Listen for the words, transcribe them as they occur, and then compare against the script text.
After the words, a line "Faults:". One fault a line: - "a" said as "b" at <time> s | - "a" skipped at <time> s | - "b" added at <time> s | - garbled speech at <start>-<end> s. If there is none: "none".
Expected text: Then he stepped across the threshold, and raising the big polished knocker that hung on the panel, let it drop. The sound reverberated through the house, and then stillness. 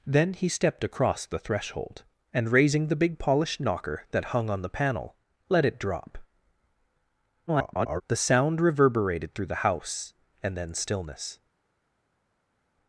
Then he stepped across the threshold, and raising the big polished knocker that hung on the panel, let it drop. [garbled] The sound reverberated through the house, and then stillness.
Faults:
- garbled speech at 7.5-8.0 s